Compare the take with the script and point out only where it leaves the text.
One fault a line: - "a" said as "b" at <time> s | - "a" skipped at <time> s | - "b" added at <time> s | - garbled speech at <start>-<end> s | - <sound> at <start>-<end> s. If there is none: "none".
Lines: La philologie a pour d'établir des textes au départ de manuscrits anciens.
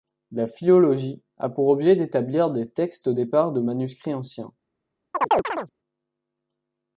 - "objet" added at 1.7 s
- chirp at 5.1-5.7 s